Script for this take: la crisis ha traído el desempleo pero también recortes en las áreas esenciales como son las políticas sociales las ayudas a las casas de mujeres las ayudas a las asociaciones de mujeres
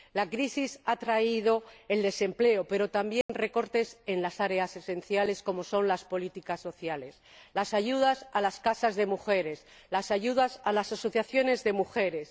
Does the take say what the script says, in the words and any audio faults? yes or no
no